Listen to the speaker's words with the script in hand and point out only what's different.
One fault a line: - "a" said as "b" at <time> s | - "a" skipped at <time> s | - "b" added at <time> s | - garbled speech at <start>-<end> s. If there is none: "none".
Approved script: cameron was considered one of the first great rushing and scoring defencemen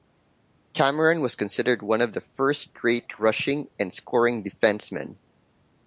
none